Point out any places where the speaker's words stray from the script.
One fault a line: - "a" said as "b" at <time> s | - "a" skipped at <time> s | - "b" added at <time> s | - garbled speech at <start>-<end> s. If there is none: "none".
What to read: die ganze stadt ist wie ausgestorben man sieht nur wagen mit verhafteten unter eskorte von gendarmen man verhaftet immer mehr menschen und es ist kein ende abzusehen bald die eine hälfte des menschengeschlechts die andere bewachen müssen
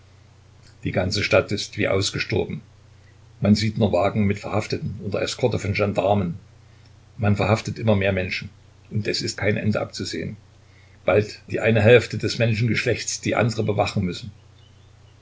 none